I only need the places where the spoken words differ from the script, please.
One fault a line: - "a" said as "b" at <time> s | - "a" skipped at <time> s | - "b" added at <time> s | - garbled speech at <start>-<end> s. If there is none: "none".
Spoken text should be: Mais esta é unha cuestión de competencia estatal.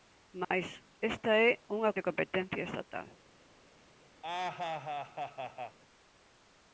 - "cuestión" skipped at 1.9 s